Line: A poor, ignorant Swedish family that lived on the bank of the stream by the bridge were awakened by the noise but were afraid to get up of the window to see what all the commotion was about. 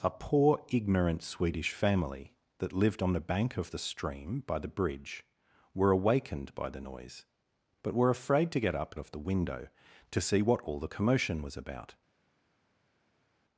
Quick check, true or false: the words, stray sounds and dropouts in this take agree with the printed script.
true